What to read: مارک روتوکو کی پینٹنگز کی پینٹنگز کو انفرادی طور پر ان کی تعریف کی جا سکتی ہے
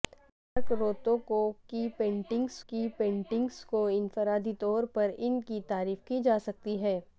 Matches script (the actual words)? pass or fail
pass